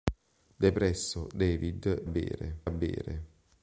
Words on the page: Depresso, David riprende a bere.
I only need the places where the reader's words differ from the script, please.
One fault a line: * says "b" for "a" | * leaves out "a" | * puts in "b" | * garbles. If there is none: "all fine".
* says "bere" for "riprende"